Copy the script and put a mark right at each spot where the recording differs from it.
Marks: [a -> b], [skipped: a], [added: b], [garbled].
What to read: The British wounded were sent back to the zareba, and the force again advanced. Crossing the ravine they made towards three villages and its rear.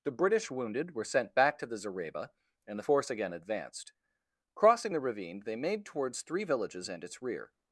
The British wounded were sent back to the zareba, and the force again advanced. Crossing the ravine they made towards three villages and its rear.